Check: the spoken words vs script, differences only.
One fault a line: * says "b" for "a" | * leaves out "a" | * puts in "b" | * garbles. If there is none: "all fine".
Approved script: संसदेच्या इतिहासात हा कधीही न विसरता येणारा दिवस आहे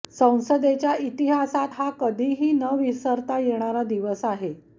all fine